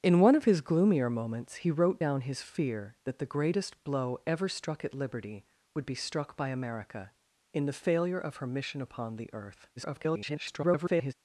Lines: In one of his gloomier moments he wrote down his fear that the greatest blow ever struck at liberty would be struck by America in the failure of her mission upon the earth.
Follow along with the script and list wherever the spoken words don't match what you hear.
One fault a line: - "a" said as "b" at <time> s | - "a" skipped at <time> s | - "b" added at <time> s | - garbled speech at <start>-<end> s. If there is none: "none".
- garbled speech at 9.8-11.1 s